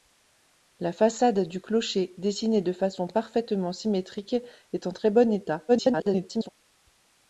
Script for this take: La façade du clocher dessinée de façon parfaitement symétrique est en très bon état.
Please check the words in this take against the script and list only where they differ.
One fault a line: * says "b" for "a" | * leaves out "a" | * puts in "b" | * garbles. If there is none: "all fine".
* garbles